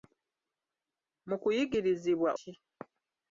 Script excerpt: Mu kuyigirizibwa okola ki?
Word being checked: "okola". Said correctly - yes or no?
no